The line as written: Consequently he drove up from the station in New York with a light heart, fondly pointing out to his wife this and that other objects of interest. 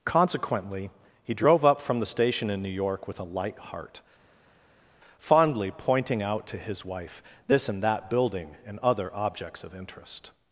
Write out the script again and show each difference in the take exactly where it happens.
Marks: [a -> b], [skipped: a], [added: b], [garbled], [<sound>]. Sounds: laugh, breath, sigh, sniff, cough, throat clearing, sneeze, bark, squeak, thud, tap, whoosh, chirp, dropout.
Consequently he drove up from the station in New York with a light heart, fondly pointing out to his wife this and that [added: building and] other objects of interest.